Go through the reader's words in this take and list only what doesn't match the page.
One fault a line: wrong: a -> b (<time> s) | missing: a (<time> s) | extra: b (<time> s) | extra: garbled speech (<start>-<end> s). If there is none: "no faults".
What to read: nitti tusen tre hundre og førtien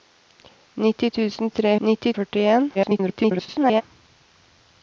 wrong: hundre -> nitti (1.9 s)
extra: garbled speech (2.7-3.8 s)